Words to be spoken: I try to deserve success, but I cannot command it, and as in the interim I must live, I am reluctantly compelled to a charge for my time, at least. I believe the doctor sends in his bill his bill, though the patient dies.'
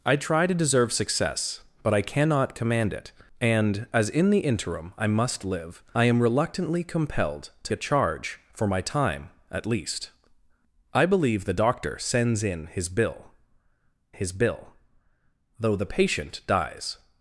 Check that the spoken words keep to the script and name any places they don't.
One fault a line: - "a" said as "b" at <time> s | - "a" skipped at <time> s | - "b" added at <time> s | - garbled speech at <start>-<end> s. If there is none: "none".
none